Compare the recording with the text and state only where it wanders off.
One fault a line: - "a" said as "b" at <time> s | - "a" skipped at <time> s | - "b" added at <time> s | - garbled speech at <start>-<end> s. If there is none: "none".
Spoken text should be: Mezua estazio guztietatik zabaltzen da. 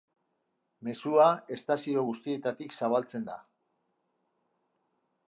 none